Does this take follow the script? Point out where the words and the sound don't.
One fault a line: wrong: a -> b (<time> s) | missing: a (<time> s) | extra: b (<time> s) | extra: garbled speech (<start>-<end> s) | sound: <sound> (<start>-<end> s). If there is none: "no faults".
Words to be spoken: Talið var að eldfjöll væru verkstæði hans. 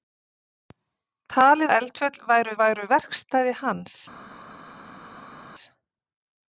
missing: var (1.7 s)
extra: væru (2.6 s)